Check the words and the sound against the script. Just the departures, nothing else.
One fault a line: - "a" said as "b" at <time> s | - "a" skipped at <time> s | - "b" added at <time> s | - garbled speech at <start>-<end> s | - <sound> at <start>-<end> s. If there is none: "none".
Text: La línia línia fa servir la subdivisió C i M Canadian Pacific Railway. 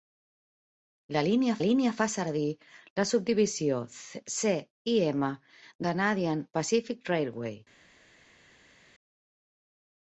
none